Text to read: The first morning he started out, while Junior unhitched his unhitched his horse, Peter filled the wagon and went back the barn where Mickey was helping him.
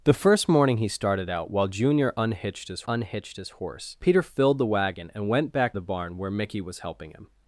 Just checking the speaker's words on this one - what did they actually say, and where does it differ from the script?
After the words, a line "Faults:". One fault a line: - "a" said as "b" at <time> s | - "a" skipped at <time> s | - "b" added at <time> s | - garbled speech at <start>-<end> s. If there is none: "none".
The first morning he started out, while Junior unhitched his unhitched his horse, Peter filled the wagon and went back the barn where Mickey was helping him.
Faults:
none